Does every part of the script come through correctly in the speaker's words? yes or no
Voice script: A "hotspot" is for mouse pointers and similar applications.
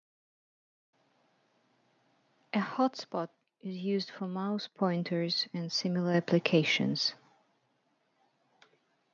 no